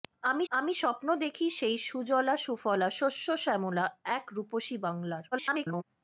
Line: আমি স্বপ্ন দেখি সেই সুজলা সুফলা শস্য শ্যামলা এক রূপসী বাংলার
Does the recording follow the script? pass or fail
fail